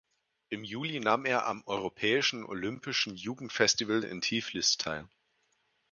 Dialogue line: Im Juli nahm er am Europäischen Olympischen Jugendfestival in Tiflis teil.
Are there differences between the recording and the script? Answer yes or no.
no